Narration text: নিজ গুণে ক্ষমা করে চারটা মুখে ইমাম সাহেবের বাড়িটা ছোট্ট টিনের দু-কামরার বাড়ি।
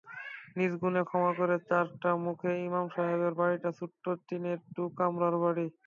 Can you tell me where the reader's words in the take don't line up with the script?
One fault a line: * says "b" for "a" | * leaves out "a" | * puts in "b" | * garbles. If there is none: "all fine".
all fine